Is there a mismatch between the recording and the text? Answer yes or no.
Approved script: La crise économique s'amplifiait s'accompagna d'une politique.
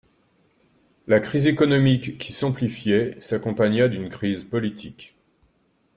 yes